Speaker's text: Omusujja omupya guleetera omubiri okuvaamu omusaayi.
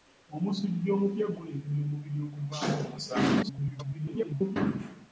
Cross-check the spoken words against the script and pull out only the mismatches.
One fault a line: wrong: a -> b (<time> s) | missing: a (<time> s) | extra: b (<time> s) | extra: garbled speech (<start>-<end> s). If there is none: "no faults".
extra: garbled speech (3.4-4.6 s)